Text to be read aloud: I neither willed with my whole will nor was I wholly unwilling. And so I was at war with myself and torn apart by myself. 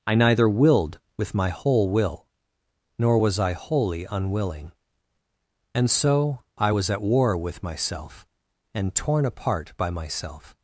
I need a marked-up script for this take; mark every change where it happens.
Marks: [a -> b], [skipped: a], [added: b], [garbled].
I neither willed with my whole will nor was I wholly unwilling. And so I was at war with myself and torn apart by myself.